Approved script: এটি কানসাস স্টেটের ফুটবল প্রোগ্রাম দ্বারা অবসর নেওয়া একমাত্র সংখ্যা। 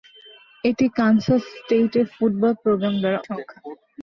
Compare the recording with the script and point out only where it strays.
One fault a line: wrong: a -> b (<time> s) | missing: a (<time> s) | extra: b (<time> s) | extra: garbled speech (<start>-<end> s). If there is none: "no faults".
missing: অবসর নেওয়া একমাত্র (3.2 s)